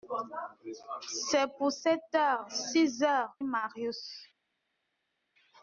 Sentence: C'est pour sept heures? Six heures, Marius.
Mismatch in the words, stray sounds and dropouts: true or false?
false